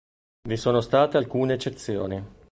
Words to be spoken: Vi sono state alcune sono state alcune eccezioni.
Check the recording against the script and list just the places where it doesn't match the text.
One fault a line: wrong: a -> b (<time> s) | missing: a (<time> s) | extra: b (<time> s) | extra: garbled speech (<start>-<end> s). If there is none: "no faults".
missing: sono state alcune (1.5 s)